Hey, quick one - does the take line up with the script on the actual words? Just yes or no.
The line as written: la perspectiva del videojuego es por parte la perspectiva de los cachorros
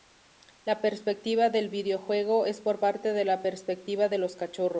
no